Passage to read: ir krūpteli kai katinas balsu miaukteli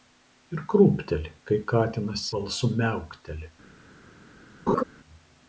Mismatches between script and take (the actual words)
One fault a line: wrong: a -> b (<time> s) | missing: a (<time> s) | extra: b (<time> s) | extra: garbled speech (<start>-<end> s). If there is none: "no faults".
no faults